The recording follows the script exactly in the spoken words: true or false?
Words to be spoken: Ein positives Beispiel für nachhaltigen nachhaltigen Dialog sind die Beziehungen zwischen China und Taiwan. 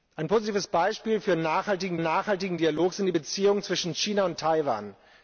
true